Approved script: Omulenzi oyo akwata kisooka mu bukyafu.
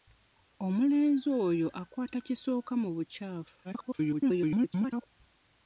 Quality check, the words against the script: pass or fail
fail